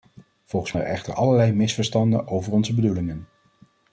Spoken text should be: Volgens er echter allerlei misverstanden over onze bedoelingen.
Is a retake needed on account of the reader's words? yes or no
no